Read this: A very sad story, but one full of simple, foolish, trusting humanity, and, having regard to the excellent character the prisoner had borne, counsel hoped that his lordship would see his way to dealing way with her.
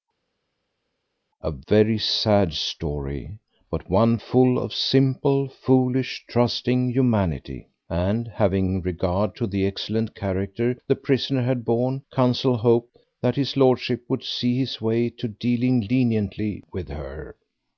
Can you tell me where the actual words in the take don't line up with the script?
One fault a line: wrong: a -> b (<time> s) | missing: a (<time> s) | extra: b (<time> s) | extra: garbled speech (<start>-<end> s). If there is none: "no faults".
wrong: way -> leniently (15.9 s)